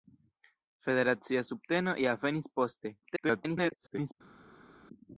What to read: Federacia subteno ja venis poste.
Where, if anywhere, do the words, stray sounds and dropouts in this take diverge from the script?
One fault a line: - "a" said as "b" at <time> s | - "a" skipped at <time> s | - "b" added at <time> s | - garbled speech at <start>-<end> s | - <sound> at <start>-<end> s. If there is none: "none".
- garbled speech at 3.0-4.1 s